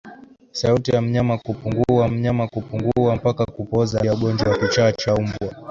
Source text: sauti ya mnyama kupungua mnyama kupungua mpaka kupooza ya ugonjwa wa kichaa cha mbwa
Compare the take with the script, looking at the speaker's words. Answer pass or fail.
pass